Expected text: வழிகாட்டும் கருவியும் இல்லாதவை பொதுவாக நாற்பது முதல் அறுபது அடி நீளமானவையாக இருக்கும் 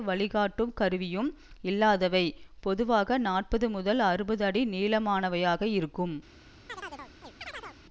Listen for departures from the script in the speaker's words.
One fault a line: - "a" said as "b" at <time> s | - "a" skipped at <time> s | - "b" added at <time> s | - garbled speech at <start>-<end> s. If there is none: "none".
none